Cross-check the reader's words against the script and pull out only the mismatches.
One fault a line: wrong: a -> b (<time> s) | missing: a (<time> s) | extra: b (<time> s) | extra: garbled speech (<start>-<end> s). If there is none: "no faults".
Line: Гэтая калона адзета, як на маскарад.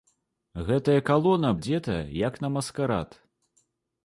no faults